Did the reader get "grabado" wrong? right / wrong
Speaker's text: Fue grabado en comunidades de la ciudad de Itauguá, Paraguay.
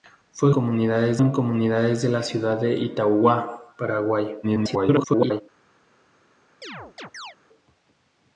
wrong